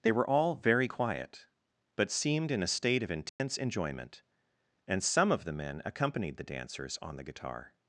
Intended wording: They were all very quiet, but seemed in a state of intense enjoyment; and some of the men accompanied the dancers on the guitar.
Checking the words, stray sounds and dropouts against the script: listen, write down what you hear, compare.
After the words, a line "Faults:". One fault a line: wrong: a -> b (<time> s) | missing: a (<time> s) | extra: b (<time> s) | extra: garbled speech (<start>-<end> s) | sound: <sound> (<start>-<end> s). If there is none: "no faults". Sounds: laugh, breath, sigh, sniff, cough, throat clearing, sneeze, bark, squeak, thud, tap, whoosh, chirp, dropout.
They were all very quiet, but seemed in a state of intense enjoyment; and some of the men accompanied the dancers on the guitar.
Faults:
sound: dropout (3.3-3.4 s)